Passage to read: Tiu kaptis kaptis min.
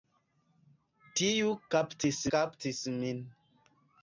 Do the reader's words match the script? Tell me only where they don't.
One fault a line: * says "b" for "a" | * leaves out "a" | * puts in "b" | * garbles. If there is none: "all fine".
all fine